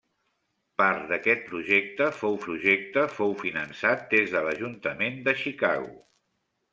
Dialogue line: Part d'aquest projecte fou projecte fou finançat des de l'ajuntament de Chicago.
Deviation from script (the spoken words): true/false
false